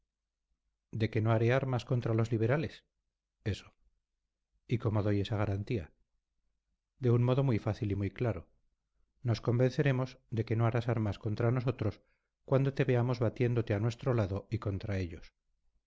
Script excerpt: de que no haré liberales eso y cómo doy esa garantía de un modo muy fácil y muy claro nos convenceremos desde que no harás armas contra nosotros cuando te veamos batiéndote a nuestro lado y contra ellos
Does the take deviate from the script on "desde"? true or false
true